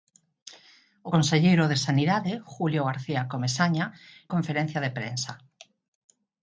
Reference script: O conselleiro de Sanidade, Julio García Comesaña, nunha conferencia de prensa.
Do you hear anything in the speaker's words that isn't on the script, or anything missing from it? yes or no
yes